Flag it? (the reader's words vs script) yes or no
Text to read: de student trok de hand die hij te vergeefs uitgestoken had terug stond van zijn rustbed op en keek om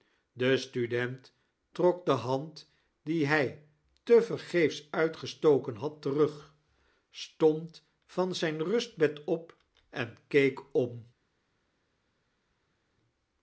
no